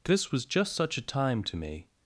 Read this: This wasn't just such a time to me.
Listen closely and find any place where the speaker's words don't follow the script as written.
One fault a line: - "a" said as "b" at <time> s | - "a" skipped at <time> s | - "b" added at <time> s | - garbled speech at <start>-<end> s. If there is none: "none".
- "wasn't" said as "was" at 0.3 s